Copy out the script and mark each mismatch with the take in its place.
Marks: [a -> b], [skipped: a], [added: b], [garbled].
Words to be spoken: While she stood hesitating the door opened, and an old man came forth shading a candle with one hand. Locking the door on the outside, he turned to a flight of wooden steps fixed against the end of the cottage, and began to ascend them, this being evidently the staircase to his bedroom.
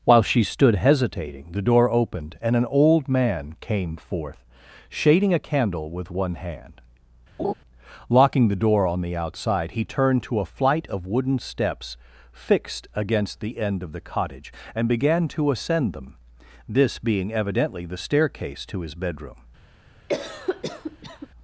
While she stood hesitating the door opened, and an old man came forth shading a candle with one hand. Locking the door on the outside, he turned to a flight of wooden steps fixed against the end of the cottage, and began to ascend them, this being evidently the staircase to his bedroom.